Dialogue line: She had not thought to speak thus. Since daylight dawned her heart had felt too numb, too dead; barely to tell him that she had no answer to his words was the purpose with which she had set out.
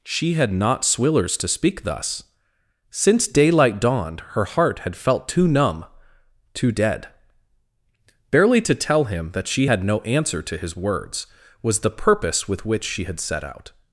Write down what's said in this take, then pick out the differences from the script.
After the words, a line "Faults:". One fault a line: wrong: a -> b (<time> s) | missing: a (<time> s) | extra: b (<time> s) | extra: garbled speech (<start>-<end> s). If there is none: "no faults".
She had not swillers to speak thus. Since daylight dawned her heart had felt too numb, too dead; barely to tell him that she had no answer to his words was the purpose with which she had set out.
Faults:
wrong: thought -> swillers (0.8 s)